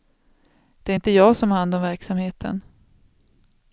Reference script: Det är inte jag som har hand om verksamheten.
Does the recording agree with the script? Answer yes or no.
yes